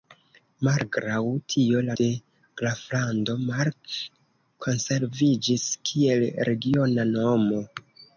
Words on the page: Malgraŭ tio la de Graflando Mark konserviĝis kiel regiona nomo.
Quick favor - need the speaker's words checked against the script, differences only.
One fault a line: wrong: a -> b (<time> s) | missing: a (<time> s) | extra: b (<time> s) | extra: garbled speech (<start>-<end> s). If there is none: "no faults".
no faults